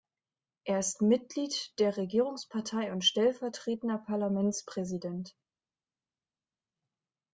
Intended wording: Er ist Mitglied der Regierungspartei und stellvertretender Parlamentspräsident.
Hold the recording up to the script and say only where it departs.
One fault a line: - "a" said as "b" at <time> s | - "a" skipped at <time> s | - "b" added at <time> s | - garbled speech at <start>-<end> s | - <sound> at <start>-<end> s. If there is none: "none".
none